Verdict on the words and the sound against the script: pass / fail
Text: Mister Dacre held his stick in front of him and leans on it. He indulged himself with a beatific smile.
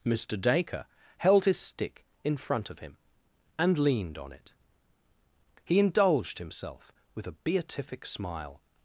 fail